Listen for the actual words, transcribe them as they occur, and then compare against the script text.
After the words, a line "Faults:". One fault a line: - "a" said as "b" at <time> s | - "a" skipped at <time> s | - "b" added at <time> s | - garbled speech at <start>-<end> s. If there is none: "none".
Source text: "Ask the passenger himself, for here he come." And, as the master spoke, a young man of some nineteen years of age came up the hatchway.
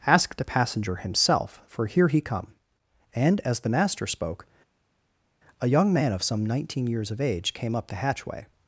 "Ask the passenger himself, for here he come." And, as the master spoke, a young man of some nineteen years of age came up the hatchway.
Faults:
none